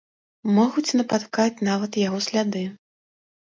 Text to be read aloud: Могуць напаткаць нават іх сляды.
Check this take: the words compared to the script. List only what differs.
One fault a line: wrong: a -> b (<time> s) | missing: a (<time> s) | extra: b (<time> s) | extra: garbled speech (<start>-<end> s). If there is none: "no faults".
wrong: іх -> яго (2.1 s)